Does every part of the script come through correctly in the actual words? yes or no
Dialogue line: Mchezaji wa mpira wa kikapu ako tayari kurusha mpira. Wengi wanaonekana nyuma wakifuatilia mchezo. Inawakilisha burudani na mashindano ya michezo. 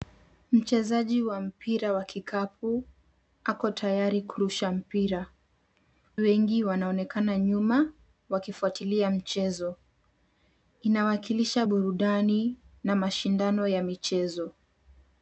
yes